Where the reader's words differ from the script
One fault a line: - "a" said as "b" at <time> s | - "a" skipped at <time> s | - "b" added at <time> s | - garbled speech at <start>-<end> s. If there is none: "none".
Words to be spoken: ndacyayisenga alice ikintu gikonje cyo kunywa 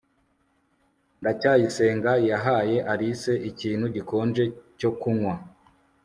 - "yahaye" added at 2.3 s